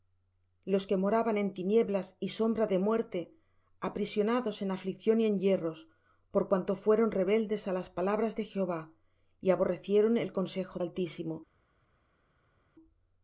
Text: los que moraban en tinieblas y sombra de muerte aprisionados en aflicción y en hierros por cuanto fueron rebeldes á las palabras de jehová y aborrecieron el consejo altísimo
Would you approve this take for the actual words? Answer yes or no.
yes